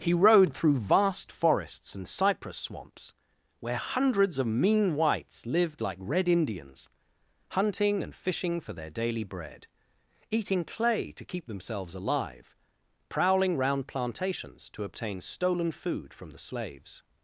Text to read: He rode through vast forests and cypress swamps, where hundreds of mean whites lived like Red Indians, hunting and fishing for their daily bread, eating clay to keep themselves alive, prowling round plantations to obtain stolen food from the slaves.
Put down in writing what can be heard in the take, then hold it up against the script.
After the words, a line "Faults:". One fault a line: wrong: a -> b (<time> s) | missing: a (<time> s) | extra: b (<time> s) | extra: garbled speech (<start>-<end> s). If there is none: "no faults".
He rode through vast forests and cypress swamps, where hundreds of mean whites lived like Red Indians, hunting and fishing for their daily bread, eating clay to keep themselves alive, prowling round plantations to obtain stolen food from the slaves.
Faults:
no faults